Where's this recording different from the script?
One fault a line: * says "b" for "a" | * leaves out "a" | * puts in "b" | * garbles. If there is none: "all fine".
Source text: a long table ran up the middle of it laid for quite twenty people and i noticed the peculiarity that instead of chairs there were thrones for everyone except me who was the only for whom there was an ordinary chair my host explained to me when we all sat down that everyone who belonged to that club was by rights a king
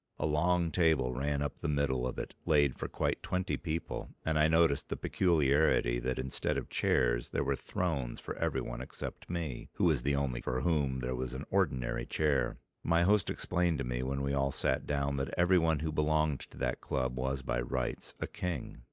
all fine